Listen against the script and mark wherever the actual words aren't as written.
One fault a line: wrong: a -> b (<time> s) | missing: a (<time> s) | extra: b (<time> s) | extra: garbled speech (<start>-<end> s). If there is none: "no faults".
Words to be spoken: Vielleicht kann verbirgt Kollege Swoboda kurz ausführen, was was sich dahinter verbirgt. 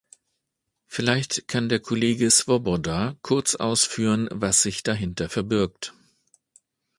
wrong: verbirgt -> der (1.7 s)
missing: was (4.6 s)